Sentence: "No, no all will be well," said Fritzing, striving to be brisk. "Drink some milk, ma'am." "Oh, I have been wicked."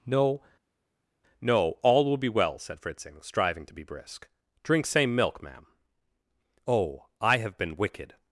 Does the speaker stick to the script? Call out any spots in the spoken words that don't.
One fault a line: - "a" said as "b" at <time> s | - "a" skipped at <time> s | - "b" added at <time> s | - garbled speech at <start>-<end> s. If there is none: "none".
- "some" said as "same" at 4.9 s